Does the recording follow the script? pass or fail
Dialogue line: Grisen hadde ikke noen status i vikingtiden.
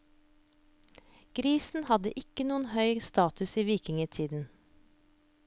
fail